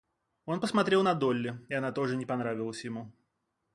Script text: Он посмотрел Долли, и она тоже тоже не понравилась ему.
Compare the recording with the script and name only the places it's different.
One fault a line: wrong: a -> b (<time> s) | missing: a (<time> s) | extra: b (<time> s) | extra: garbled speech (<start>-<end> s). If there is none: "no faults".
extra: на (1.0 s)
missing: тоже (2.2 s)